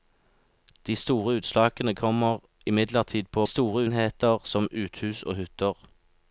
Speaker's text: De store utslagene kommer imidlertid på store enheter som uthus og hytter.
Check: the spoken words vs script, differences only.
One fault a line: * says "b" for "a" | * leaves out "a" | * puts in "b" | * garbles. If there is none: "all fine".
all fine